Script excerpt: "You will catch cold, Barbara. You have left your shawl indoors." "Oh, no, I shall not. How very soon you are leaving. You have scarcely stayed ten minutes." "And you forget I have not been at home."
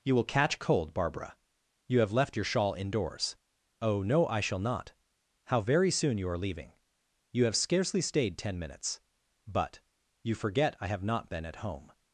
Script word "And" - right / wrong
wrong